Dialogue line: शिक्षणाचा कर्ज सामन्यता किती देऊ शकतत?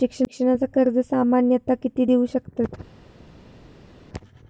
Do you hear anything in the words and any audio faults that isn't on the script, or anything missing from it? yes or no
no